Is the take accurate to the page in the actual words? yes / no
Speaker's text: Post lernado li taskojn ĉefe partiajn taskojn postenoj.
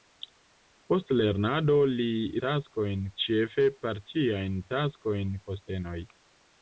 yes